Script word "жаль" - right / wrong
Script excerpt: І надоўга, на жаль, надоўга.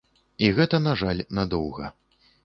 right